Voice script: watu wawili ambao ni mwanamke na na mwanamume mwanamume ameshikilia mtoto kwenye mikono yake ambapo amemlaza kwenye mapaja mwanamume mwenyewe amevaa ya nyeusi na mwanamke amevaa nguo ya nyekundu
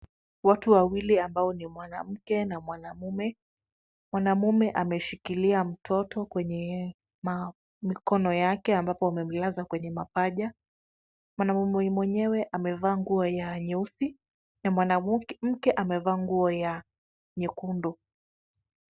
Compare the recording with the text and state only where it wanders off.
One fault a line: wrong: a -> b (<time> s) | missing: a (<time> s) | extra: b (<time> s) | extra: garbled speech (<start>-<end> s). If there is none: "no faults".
missing: na (2.6 s)
extra: nguo (13.0 s)